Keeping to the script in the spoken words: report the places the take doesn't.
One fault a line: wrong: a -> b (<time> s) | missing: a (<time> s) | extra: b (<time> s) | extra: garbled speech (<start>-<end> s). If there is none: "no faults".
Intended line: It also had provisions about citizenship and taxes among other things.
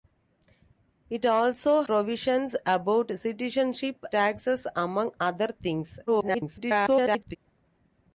missing: had (1.8 s)
missing: and (4.0 s)
extra: garbled speech (6.1-7.4 s)